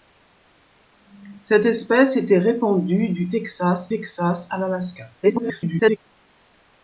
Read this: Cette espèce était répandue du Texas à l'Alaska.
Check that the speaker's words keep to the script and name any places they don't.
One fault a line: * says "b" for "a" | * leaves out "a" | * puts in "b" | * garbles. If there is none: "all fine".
* puts in "Texas"
* garbles